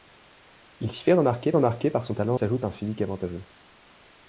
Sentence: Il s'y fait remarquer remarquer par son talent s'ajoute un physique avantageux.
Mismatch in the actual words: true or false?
false